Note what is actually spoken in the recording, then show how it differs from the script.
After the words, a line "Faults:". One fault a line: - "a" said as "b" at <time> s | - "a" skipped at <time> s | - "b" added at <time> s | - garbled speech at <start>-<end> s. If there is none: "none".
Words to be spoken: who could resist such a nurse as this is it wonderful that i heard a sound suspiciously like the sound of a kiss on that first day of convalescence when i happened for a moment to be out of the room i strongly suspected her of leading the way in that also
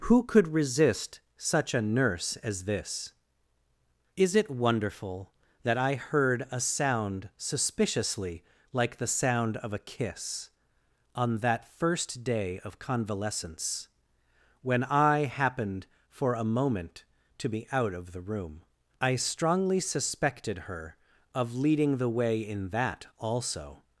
who could resist such a nurse as this is it wonderful that i heard a sound suspiciously like the sound of a kiss on that first day of convalescence when i happened for a moment to be out of the room i strongly suspected her of leading the way in that also
Faults:
none